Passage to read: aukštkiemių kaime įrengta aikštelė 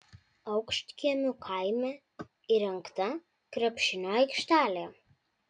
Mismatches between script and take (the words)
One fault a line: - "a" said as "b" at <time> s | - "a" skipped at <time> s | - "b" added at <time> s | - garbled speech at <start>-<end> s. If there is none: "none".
- "krepšinio" added at 3.6 s